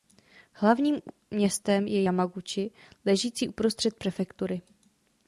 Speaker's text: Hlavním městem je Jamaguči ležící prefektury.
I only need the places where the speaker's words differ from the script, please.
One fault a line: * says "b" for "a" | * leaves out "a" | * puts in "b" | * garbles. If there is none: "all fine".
* puts in "uprostřed"